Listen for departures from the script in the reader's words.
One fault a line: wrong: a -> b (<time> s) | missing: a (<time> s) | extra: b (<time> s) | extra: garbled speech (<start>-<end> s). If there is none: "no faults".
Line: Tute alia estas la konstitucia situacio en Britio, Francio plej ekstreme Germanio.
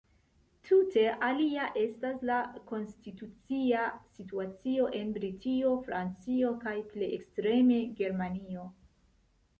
extra: kaj (6.7 s)